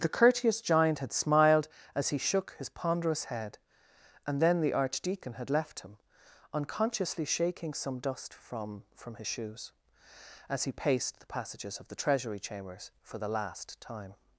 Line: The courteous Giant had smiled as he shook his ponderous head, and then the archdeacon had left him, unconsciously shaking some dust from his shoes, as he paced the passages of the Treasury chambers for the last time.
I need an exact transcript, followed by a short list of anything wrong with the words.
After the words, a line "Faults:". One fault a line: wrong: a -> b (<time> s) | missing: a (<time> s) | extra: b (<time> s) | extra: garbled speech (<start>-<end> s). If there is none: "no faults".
The courteous Giant had smiled as he shook his ponderous head, and then the archdeacon had left him, unconsciously shaking some dust from from his shoes, as he paced the passages of the Treasury chambers for the last time.
Faults:
extra: from (8.9 s)